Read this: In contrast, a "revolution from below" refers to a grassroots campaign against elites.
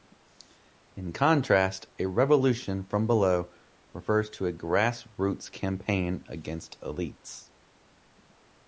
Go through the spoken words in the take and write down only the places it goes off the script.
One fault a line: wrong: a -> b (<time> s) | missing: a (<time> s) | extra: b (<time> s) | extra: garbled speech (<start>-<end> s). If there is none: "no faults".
no faults